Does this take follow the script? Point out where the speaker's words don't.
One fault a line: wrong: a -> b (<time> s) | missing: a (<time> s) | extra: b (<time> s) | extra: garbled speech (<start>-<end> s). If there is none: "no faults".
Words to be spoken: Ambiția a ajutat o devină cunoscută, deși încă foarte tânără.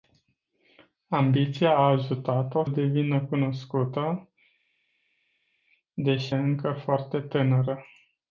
no faults